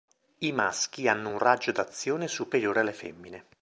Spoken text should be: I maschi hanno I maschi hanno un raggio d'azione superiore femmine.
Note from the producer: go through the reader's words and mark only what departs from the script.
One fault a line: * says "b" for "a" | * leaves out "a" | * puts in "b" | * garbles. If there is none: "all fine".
* leaves out "I maschi hanno"
* puts in "alle"